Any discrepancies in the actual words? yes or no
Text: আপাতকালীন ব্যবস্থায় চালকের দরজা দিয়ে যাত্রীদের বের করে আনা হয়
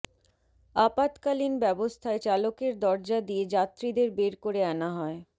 no